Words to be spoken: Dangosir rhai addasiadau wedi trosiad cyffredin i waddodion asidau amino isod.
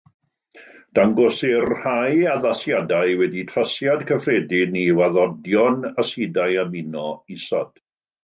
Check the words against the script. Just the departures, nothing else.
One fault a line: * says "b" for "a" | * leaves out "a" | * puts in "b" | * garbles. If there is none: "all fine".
all fine